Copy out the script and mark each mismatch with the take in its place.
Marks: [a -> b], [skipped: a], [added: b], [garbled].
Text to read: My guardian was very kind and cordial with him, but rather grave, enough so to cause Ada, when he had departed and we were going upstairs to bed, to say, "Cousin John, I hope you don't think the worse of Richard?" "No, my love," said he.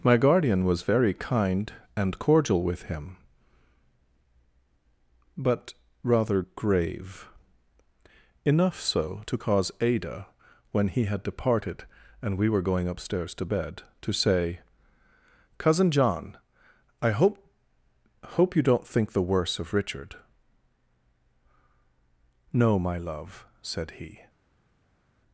My guardian was very kind and cordial with him, but rather grave, enough so to cause Ada, when he had departed and we were going upstairs to bed, to say, "Cousin John, I hope [added: hope] you don't think the worse of Richard?" "No, my love," said he.